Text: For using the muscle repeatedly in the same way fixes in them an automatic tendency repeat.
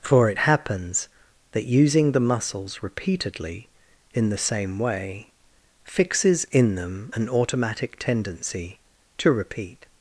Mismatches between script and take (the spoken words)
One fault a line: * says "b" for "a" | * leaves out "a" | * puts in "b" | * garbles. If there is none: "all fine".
* puts in "it happens that"
* says "muscles" for "muscle"
* puts in "to"